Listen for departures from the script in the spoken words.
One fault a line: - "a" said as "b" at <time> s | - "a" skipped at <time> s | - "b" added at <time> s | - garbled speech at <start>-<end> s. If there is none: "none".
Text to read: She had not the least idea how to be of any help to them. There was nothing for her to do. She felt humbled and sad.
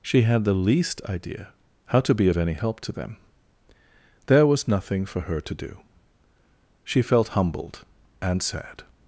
- "not" skipped at 0.4 s